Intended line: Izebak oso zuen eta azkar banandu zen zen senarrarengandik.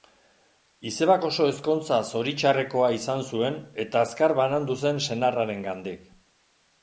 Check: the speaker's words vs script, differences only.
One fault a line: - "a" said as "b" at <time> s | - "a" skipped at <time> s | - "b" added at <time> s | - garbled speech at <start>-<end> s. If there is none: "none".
- "ezkontza zoritxarrekoa izan" added at 1.5 s
- "zen" skipped at 5.0 s